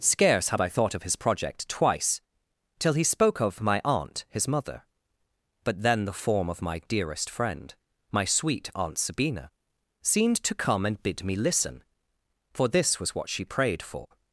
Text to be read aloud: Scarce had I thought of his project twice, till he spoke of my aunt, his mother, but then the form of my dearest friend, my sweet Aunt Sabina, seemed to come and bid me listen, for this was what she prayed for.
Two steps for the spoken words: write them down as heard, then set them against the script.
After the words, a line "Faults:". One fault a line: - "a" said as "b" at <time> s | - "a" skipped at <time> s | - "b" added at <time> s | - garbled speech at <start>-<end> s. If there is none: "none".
Scarce had I thought of his project twice, till he spoke of my aunt, his mother, but then the form of my dearest friend, my sweet Aunt Sabina, seemed to come and bid me listen, for this was what she prayed for.
Faults:
none